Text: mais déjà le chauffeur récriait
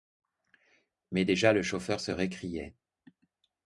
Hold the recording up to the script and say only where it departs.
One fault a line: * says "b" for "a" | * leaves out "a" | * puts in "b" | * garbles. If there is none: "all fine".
* puts in "se"